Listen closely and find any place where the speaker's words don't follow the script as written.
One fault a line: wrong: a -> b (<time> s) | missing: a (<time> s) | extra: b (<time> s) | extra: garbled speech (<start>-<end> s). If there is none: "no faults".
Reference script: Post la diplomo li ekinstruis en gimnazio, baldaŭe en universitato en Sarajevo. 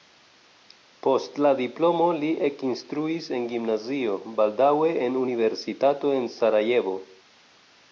no faults